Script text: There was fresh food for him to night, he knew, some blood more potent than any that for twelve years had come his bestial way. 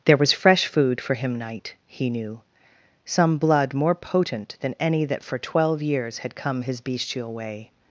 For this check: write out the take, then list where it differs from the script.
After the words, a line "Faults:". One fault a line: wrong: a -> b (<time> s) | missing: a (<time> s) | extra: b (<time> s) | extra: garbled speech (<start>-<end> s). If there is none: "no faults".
There was fresh food for him night, he knew, some blood more potent than any that for twelve years had come his bestial way.
Faults:
missing: to (1.4 s)